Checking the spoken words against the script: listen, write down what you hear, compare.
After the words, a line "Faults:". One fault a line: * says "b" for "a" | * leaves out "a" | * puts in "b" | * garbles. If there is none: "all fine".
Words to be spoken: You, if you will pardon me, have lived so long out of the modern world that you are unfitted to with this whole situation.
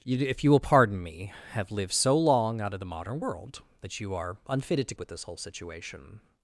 You, if you will pardon me, have lived so long out of the modern world that you are unfitted to with this whole situation.
Faults:
all fine